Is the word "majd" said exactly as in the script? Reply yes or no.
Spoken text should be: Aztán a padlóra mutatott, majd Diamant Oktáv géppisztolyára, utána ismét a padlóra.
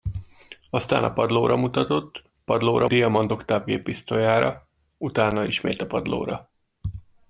no